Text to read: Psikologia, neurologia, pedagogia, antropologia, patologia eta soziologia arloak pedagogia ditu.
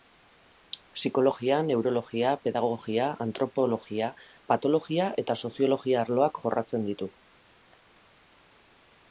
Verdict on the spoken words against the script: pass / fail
fail